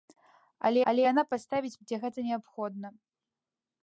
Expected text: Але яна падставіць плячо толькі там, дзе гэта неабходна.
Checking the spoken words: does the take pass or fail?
fail